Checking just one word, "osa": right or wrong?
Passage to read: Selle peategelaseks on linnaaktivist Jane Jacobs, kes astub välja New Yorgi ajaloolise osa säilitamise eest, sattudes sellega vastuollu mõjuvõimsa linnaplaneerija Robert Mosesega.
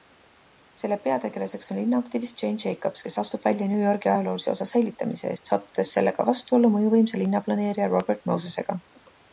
right